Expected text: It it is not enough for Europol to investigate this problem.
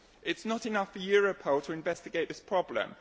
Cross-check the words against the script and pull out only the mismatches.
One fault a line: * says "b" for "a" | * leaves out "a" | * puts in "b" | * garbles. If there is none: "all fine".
* leaves out "it"